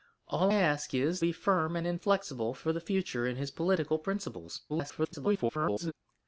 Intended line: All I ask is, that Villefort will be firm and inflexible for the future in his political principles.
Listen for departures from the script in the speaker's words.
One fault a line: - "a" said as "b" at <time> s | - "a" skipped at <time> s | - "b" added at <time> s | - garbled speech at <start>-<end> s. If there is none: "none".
- "I" skipped at 0.5 s
- "that Villefort will" skipped at 1.2 s
- garbled speech at 4.7-5.9 s